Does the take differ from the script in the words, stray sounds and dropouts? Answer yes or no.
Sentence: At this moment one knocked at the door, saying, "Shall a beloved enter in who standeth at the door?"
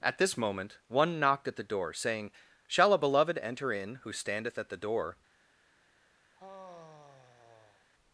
yes